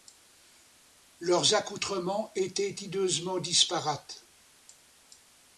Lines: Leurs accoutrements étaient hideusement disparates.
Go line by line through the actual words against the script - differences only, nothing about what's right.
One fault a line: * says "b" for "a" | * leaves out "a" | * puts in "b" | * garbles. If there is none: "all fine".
all fine